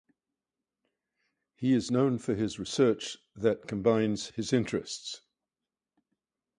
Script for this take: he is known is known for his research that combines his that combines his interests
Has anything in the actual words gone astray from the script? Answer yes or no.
yes